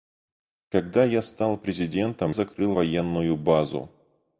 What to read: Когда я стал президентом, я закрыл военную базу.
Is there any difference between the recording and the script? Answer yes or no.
yes